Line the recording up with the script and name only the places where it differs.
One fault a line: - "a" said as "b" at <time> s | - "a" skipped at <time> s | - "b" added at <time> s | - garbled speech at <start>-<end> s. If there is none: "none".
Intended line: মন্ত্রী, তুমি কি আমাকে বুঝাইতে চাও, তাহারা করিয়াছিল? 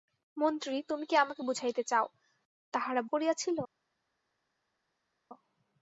none